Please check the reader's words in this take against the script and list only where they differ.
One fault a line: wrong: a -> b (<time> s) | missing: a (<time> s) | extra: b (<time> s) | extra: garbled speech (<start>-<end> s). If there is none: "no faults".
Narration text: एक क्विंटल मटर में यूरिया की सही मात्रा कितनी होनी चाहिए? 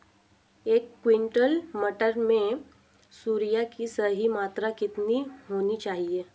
no faults